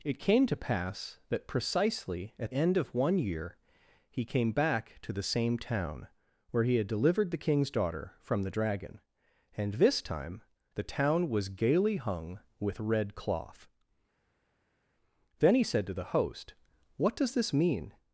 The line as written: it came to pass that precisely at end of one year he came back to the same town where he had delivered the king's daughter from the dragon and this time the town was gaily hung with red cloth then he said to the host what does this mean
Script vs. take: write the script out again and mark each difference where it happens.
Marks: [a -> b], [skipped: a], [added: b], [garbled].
it came to pass that precisely at end of one year he came back to the same town where he had delivered the king's daughter from the dragon and this time the town was gaily hung with red cloth then he said to the host what does this mean